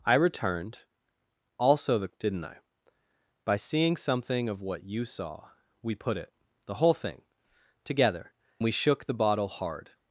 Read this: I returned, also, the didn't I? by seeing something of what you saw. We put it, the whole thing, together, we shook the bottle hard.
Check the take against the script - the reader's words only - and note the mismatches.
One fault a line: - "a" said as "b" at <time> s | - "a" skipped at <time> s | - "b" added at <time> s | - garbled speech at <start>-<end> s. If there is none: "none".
none